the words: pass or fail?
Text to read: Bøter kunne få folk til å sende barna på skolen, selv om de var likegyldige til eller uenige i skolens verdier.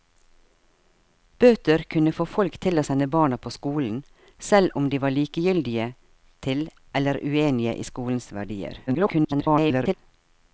fail